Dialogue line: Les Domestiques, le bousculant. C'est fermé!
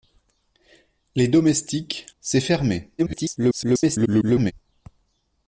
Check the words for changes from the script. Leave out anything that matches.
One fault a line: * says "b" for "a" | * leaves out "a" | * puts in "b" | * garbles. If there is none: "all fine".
* leaves out "le bousculant"
* garbles